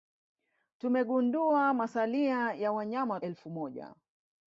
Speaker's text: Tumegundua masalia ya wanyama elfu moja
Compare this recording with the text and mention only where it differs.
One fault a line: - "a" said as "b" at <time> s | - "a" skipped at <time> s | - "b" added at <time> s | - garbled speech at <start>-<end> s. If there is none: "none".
none